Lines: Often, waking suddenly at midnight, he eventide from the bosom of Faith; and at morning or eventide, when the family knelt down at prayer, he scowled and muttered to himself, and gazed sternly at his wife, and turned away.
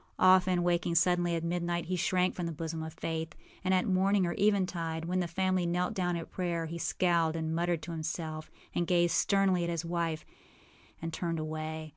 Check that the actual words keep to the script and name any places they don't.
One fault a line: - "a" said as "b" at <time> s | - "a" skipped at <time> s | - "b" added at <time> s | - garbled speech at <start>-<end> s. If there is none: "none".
- "eventide" said as "shrank" at 1.9 s